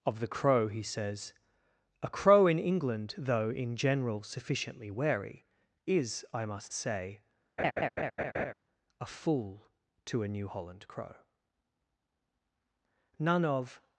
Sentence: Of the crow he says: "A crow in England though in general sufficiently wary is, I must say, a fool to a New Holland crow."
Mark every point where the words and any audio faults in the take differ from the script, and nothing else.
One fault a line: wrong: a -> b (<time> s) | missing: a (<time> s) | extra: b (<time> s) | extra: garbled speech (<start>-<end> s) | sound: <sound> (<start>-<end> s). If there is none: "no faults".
sound: laugh (7.6-8.5 s)
extra: None of (13.2 s)